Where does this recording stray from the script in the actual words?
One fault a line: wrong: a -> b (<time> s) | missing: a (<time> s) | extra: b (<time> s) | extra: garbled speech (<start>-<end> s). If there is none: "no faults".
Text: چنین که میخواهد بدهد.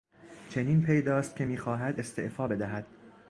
extra: پیداست (0.8 s)
extra: استعفا (2.0 s)